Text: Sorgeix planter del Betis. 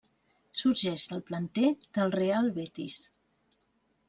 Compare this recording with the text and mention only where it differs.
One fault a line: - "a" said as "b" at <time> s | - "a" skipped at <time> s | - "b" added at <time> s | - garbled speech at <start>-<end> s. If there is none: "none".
- "del" added at 1.1 s
- "Real" added at 2.2 s